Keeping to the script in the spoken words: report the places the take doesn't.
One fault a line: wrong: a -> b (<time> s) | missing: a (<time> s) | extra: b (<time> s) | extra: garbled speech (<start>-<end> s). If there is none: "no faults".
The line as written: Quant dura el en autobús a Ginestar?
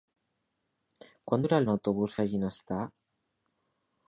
no faults